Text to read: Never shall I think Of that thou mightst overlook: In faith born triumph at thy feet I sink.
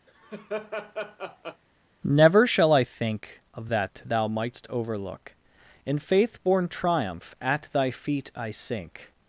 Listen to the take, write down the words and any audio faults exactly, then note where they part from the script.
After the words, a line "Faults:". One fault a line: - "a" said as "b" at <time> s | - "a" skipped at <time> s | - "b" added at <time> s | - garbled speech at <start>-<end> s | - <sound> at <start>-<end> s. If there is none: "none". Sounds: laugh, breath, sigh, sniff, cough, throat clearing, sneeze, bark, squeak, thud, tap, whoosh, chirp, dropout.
Never shall I think Of that thou mightst overlook: In faith born triumph at thy feet I sink.
Faults:
- laugh at 0.1-1.6 s